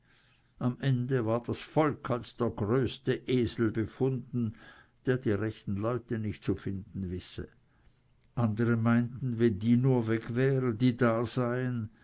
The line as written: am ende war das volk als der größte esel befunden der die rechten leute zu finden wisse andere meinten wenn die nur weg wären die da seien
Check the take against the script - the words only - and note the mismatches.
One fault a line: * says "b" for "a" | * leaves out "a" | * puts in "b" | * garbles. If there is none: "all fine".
* puts in "nicht"